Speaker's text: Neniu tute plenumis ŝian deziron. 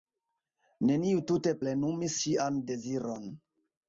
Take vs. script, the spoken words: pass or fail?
pass